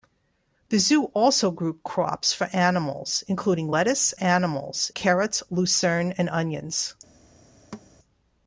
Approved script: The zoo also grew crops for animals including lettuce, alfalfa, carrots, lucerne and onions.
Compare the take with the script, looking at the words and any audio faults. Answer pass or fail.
fail